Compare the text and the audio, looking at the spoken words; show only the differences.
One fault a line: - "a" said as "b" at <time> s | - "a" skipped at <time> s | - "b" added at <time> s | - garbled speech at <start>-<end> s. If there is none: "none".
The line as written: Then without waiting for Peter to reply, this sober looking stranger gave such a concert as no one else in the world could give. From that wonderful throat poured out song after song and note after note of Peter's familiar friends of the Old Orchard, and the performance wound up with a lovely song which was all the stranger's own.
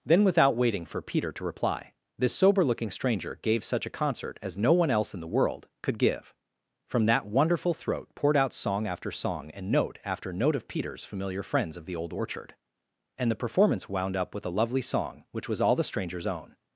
none